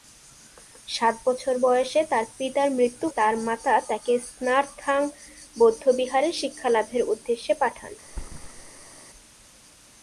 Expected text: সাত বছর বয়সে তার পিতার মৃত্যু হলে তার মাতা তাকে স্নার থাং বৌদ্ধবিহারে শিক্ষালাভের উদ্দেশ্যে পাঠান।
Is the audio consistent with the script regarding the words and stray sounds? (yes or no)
no